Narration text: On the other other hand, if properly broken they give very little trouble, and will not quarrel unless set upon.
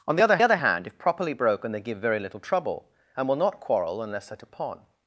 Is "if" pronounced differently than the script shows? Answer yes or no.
no